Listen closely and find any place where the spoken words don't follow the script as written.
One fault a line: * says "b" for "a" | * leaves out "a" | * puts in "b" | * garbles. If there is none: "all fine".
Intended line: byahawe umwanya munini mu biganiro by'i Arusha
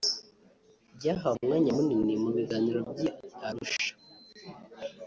all fine